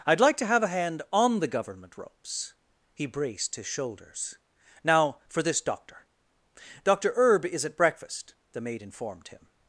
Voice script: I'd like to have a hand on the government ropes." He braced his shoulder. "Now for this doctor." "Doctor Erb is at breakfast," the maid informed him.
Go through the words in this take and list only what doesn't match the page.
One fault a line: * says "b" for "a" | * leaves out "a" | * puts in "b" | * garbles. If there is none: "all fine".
* says "shoulders" for "shoulder"